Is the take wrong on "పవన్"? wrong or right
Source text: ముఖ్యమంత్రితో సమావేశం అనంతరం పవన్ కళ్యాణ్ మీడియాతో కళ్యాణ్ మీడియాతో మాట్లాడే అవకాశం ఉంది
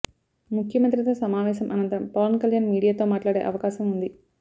right